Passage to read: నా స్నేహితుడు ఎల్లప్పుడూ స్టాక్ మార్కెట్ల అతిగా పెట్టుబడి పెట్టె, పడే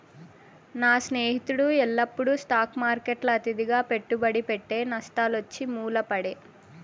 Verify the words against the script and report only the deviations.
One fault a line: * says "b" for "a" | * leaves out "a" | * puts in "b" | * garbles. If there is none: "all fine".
* puts in "నష్టాలొచ్చి మూల"